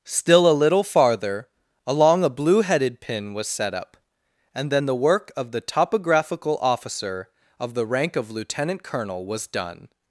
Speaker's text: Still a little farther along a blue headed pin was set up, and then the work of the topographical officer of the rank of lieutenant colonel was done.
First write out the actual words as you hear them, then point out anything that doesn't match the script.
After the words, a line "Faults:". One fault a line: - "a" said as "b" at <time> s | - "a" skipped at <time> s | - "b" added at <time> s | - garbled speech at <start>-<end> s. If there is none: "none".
Still a little farther along a blue headed pin was set up, and then the work of the topographical officer of the rank of lieutenant colonel was done.
Faults:
none